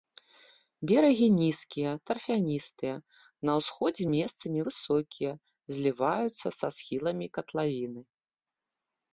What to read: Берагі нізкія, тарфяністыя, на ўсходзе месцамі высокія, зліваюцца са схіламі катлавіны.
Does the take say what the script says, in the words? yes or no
yes